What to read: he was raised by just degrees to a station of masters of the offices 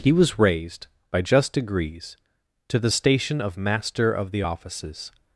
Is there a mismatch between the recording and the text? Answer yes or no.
yes